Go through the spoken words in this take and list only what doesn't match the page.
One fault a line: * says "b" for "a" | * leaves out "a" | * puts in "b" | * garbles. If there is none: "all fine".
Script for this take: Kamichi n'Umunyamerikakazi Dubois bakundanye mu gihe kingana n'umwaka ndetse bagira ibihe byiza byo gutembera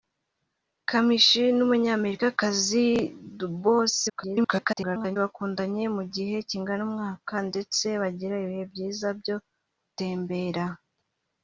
* garbles